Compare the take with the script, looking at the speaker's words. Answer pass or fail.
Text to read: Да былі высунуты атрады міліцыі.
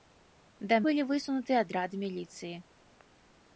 pass